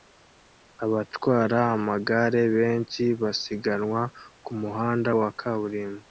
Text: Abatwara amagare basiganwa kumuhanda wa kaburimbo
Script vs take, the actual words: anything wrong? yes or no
yes